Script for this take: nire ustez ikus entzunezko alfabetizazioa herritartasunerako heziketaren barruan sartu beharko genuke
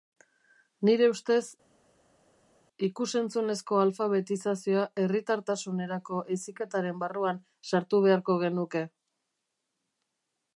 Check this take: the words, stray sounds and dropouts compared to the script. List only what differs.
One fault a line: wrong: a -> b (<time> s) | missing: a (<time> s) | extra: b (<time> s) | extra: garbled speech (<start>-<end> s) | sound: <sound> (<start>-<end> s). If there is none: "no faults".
no faults